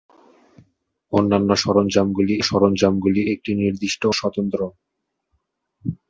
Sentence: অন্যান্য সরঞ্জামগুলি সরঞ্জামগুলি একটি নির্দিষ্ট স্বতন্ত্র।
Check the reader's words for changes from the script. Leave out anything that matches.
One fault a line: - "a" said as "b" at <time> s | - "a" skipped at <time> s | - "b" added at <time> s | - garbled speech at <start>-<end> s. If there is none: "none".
none